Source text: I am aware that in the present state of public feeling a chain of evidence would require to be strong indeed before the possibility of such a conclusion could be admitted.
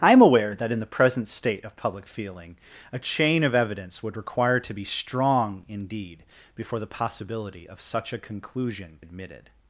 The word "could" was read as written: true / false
false